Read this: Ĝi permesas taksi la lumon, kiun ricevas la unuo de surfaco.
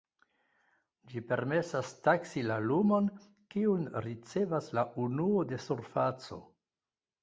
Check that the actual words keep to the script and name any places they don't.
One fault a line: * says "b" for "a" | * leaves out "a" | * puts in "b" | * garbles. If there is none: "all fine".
all fine